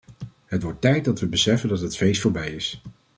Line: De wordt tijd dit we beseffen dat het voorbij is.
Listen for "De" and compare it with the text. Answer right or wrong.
wrong